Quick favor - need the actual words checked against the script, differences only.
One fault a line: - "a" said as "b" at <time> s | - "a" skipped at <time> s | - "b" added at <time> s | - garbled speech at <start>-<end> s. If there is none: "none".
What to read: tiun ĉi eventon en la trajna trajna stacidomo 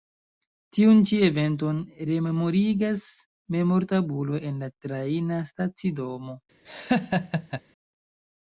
- "rememorigas memortabulo" added at 2.1 s
- "trajna" skipped at 5.4 s